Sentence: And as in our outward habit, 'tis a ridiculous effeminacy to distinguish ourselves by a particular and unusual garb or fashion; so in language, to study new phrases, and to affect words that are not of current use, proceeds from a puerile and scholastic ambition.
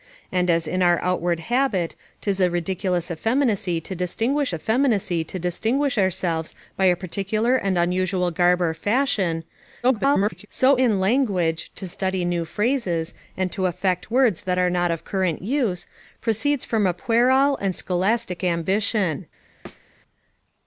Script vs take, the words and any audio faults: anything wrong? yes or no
yes